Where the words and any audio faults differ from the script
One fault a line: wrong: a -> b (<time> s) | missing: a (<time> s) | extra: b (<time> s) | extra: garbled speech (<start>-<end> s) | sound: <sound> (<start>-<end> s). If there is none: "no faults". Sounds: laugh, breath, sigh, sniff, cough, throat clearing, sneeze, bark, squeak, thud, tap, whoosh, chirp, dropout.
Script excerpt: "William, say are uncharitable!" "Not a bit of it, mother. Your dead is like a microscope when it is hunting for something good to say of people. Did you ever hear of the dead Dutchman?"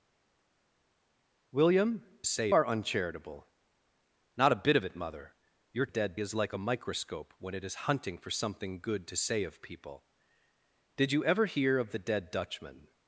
no faults